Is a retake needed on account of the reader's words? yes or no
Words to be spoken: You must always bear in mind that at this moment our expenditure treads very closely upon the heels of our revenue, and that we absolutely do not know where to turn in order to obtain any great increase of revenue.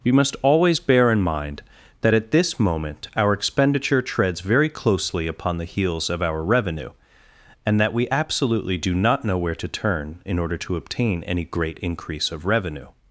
yes